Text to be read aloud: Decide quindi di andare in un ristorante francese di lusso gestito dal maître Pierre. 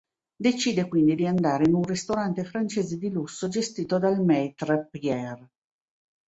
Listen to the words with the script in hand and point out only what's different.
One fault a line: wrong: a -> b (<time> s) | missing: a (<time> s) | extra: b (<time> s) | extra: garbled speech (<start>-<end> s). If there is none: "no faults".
no faults